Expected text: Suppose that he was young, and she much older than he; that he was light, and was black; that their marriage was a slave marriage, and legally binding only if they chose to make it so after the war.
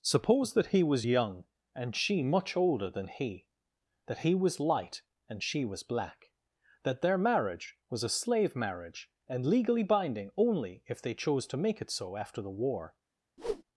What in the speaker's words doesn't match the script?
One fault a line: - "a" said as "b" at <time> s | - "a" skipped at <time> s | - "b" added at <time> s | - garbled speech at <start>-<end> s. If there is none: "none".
- "she" added at 5.4 s